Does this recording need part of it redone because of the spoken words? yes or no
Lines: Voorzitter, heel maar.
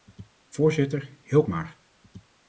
no